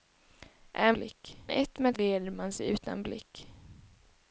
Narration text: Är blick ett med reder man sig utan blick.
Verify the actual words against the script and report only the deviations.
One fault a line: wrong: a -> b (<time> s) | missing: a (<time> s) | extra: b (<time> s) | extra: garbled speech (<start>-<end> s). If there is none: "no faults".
no faults